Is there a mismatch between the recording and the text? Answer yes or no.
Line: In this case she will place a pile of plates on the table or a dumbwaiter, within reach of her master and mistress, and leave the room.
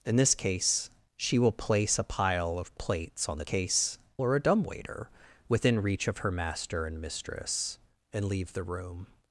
yes